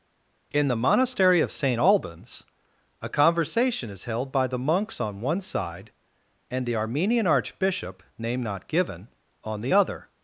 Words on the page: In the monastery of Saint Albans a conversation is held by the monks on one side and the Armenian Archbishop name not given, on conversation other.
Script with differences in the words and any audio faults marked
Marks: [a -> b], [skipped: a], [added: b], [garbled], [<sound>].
In the monastery of Saint Albans a conversation is held by the monks on one side and the Armenian Archbishop name not given, on [conversation -> the] other.